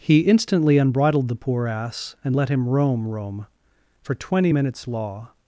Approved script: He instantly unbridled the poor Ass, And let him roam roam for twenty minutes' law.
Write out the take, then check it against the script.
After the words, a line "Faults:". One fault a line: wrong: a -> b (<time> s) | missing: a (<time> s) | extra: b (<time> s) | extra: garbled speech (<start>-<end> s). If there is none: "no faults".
He instantly unbridled the poor Ass, And let him roam roam for twenty minutes' law.
Faults:
no faults